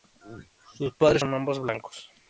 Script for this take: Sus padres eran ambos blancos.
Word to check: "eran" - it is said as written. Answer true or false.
false